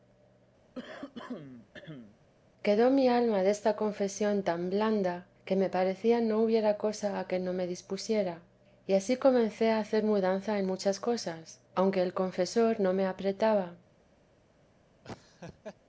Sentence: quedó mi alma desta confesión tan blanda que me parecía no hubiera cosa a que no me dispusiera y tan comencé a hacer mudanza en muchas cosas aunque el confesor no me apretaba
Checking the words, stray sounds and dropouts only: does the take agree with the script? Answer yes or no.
no